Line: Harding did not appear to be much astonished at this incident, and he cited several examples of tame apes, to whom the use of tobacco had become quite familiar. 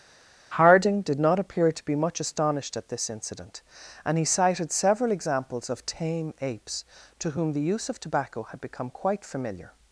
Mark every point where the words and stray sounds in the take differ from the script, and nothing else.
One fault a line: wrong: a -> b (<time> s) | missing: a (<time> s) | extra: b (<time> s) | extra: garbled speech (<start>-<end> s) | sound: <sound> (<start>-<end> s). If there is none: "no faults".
no faults